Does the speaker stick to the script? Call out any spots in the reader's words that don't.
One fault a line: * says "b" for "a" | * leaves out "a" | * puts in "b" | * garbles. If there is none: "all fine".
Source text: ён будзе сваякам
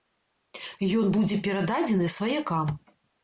* puts in "перададзены"